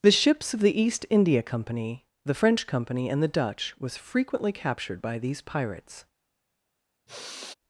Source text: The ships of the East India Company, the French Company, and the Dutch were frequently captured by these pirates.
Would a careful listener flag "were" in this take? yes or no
yes